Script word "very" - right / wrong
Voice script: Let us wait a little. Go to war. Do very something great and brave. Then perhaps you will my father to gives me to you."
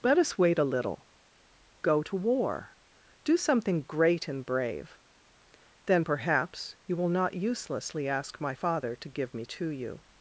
wrong